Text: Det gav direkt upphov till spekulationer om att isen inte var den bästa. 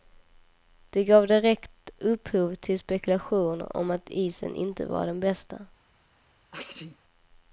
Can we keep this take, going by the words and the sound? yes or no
no